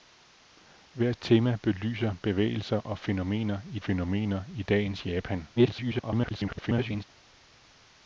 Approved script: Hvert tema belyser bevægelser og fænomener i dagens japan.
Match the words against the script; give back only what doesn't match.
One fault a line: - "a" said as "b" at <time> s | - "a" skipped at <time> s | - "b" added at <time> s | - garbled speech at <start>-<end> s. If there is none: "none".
- "fænomener i" added at 3.8 s
- garbled speech at 5.6-7.0 s